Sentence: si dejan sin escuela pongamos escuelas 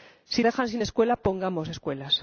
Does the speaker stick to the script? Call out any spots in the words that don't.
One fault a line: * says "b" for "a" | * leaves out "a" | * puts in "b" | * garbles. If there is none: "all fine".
all fine